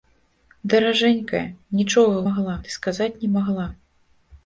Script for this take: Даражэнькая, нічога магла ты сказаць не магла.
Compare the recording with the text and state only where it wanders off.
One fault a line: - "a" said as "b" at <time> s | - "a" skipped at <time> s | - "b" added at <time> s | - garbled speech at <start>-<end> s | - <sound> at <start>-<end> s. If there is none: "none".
none